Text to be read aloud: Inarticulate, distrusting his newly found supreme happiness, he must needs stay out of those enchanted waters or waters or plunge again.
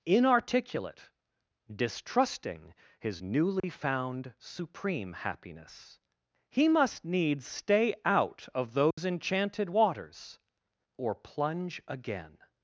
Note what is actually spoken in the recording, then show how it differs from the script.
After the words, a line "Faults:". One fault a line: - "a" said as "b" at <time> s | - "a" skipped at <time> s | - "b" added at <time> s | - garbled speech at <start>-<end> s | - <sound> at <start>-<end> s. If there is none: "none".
Inarticulate, distrusting his newly found supreme happiness, he must needs stay out of those enchanted waters or plunge again.
Faults:
- dropout at 3.6-3.6 s
- dropout at 8.9-9.0 s
- "waters or" skipped at 11.1 s